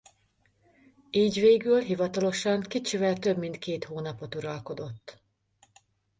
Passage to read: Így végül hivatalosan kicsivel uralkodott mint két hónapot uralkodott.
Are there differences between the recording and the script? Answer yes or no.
yes